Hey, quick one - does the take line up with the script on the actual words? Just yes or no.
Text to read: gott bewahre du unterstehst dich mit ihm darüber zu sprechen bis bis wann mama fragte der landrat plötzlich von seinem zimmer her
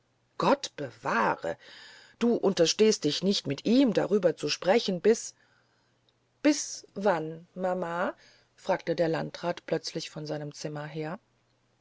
no